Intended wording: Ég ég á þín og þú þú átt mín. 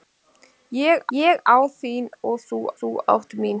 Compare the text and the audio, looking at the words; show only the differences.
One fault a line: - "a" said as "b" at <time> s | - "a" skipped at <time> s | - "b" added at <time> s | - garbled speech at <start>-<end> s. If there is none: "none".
none